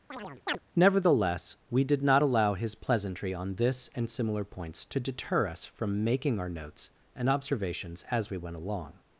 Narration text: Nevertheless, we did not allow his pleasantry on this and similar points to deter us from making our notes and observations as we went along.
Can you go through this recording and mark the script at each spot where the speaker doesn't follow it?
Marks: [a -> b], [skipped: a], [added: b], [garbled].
Nevertheless, we did not allow his pleasantry on this and similar points to deter us from making our notes and observations as we went along.